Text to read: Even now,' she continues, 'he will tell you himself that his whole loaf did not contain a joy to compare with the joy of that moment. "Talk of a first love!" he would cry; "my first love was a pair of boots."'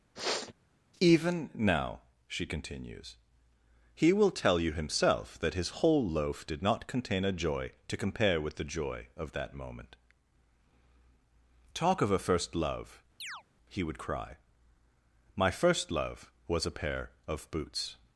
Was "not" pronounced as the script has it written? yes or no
yes